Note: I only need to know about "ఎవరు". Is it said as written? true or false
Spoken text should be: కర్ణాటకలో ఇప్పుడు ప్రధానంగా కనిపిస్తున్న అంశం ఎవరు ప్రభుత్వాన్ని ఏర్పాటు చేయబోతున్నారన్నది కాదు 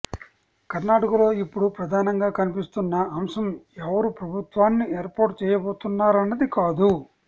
true